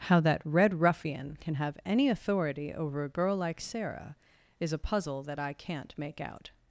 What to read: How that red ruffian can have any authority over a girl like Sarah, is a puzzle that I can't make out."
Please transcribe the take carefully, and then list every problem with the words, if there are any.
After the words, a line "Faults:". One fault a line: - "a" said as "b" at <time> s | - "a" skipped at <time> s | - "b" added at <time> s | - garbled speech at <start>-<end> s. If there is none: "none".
How that red ruffian can have any authority over a girl like Sarah, is a puzzle that I can't make out."
Faults:
none